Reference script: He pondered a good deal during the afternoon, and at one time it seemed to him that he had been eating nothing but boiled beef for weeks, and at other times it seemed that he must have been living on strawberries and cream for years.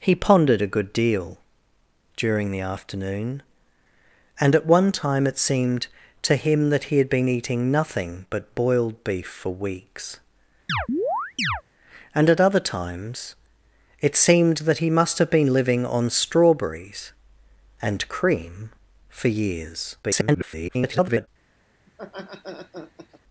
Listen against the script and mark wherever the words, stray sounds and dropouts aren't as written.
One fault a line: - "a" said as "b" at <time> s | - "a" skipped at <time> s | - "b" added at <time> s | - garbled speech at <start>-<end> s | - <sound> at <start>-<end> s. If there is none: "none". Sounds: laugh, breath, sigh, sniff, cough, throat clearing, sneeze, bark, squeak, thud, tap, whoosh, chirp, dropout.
- chirp at 10.7-11.6 s
- garbled speech at 20.0-21.3 s
- laugh at 21.9-23.2 s